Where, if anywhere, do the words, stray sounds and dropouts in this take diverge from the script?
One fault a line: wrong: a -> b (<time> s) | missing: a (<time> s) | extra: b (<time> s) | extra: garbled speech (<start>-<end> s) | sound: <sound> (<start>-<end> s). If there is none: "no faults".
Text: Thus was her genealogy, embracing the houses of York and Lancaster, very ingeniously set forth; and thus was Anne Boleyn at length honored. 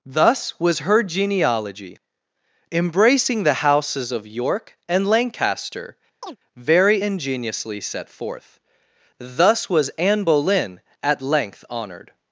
sound: chirp (6.2-6.4 s)
missing: and (8.6 s)